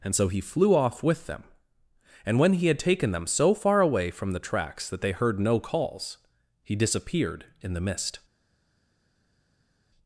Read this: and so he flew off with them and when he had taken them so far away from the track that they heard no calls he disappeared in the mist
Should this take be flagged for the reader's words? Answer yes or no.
yes